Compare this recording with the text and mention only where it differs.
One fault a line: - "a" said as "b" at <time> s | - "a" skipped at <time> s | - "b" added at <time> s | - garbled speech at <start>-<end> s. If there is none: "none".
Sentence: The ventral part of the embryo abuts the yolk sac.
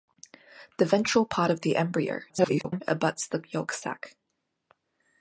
- garbled speech at 2.3-2.8 s